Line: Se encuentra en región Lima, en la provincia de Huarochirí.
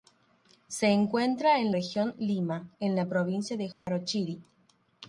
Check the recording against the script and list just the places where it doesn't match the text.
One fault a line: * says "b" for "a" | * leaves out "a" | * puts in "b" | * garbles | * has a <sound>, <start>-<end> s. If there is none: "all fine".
* has a dropout, 3.7-3.9 s